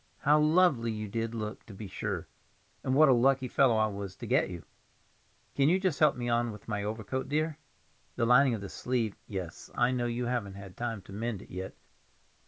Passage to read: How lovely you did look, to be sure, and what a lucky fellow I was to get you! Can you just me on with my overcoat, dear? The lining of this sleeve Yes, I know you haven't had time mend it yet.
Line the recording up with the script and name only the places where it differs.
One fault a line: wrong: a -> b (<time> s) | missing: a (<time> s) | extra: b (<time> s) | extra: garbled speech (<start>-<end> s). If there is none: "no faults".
extra: help (6.0 s)
extra: to (11.0 s)